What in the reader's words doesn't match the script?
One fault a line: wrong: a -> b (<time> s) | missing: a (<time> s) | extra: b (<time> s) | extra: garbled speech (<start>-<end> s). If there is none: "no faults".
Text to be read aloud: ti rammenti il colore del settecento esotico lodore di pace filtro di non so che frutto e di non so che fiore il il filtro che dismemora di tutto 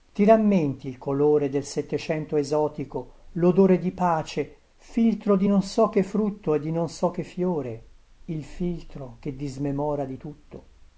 missing: il (8.4 s)